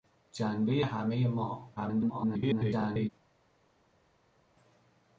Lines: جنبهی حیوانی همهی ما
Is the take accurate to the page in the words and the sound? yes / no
no